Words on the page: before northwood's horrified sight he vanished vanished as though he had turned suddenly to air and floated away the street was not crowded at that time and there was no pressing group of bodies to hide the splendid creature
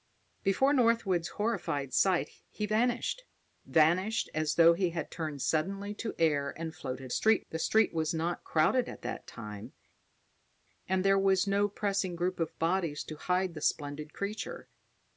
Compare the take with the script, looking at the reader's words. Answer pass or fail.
fail